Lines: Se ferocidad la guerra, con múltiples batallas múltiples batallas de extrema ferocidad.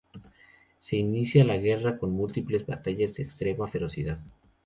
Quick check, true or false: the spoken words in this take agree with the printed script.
false